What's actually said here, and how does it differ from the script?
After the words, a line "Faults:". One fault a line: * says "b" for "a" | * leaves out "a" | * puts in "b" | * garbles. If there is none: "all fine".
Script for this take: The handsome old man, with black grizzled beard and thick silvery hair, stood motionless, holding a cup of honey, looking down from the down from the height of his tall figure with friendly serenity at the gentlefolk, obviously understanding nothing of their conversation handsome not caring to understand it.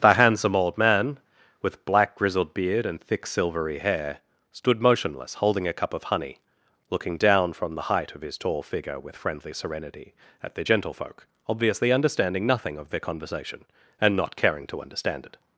The handsome old man, with black grizzled beard and thick silvery hair, stood motionless, holding a cup of honey, looking down from the height of his tall figure with friendly serenity at the gentlefolk, obviously understanding nothing of their conversation and not caring to understand it.
Faults:
* leaves out "down from the"
* says "and" for "handsome"